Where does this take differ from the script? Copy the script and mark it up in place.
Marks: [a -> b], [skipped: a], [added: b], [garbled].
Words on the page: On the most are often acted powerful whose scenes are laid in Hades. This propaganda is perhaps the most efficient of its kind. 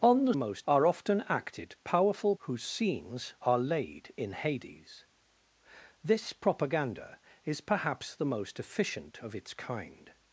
On the most are often acted powerful whose scenes are laid in Hades. This propaganda is perhaps the most efficient of its kind.